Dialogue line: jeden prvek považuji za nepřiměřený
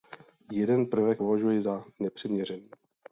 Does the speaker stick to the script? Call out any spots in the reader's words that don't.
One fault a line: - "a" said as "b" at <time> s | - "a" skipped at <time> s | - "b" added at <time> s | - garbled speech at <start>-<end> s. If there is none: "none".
none